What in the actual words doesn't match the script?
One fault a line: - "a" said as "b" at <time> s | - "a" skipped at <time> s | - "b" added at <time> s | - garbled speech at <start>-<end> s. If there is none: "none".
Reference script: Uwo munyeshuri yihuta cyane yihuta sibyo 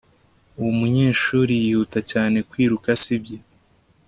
- "yihuta" said as "kwiruka" at 2.5 s